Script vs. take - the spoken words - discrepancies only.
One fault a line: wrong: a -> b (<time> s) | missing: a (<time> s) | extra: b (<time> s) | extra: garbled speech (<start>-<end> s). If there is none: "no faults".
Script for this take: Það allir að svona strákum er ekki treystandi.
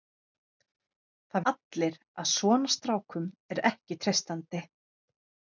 no faults